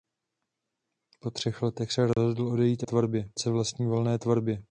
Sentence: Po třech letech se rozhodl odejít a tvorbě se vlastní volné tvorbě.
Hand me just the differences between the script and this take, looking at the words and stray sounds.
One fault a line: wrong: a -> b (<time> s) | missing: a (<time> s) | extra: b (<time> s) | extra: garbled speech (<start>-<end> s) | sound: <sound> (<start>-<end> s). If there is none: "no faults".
sound: dropout (2.1-2.2 s)